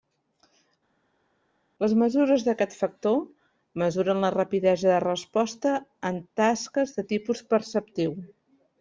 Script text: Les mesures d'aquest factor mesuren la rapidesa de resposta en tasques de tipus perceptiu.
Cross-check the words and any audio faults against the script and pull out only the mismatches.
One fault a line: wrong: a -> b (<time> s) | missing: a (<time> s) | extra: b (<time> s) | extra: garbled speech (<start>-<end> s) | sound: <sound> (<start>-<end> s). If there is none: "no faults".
no faults